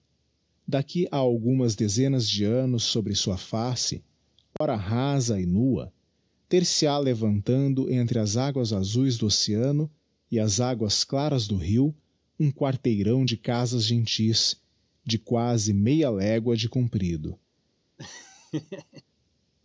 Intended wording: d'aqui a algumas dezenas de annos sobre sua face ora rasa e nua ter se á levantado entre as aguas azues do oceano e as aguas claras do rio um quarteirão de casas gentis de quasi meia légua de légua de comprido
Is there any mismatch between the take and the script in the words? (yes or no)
yes